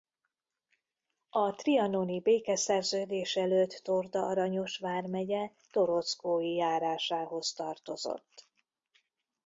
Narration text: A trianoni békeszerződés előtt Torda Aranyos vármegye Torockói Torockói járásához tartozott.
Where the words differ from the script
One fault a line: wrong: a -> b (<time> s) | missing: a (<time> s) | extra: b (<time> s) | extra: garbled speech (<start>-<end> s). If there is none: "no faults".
missing: Torockói (6.5 s)